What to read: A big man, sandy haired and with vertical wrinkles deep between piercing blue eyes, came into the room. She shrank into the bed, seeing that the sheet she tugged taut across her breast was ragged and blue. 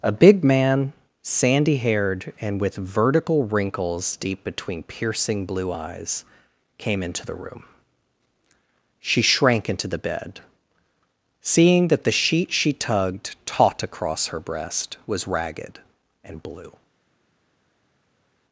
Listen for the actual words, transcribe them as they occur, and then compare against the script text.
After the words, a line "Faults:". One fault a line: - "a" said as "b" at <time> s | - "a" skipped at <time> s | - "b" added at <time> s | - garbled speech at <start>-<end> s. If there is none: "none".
A big man, sandy haired and with vertical wrinkles deep between piercing blue eyes, came into the room. She shrank into the bed, seeing that the sheet she tugged taut across her breast was ragged and blue.
Faults:
none